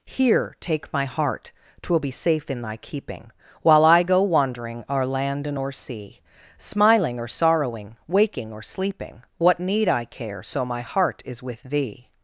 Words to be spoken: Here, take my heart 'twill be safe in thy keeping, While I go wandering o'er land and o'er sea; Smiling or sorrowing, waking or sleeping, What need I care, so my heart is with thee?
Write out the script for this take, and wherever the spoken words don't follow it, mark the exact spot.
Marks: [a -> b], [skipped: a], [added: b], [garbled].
Here, take my heart 'twill be safe in thy keeping, While I go wandering o'er land and o'er sea; Smiling or sorrowing, waking or sleeping, What need I care, so my heart is with thee?